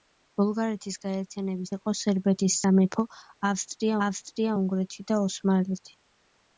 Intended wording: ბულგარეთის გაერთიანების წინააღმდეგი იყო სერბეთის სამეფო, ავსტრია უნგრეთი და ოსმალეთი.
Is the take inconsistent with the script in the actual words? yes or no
yes